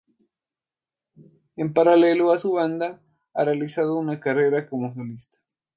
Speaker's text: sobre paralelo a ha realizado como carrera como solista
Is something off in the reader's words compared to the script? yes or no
yes